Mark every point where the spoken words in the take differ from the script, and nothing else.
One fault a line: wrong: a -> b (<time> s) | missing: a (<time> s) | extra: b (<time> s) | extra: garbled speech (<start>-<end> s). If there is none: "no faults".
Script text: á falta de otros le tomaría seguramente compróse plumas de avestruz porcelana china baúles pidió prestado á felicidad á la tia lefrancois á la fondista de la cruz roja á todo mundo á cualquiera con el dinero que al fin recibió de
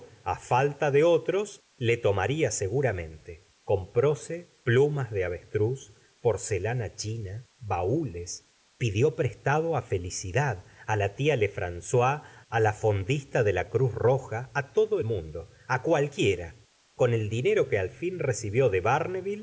no faults